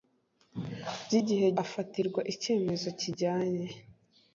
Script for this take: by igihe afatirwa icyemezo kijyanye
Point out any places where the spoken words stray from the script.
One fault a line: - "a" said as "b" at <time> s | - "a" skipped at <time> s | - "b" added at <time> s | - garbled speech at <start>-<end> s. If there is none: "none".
none